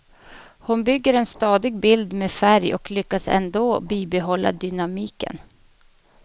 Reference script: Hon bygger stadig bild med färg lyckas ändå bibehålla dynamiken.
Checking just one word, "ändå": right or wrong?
right